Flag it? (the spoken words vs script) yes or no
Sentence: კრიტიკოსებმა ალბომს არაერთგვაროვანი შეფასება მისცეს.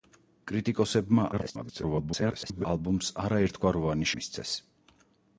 yes